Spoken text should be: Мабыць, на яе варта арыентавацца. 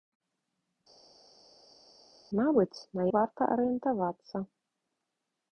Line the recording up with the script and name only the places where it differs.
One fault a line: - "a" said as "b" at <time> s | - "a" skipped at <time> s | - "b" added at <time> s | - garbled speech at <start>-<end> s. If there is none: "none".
- "яе" skipped at 3.1 s